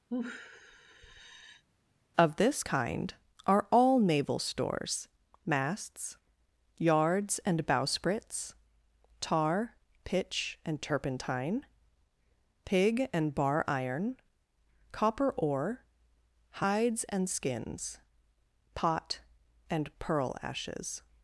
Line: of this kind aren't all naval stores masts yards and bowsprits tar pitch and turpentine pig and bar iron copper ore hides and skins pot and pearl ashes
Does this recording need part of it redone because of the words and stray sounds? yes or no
yes